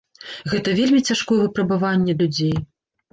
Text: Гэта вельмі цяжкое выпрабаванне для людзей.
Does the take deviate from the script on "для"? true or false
true